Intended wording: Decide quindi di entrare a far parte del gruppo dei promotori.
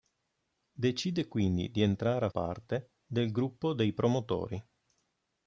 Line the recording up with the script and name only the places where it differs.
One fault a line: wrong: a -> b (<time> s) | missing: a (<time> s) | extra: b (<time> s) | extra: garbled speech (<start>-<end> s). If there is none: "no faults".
missing: far (2.3 s)